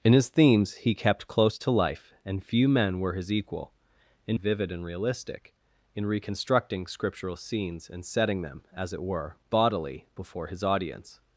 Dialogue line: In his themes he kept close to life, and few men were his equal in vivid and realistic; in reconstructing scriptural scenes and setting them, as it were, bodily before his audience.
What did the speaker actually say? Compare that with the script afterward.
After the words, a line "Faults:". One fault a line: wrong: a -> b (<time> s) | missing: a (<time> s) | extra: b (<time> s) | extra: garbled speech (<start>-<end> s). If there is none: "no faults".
In his themes he kept close to life, and few men were his equal in vivid and realistic; in reconstructing scriptural scenes and setting them, as it were, bodily before his audience.
Faults:
no faults